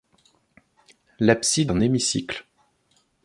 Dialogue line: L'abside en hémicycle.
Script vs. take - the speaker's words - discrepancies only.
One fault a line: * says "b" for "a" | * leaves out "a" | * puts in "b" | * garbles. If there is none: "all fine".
all fine